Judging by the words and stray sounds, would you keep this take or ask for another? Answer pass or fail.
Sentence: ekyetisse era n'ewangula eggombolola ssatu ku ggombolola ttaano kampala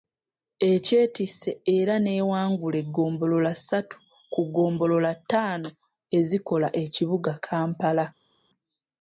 fail